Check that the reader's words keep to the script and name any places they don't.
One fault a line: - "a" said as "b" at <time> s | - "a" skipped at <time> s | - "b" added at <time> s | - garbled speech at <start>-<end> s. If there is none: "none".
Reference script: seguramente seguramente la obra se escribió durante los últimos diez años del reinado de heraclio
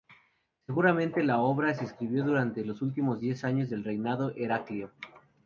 - "seguramente" skipped at 1.2 s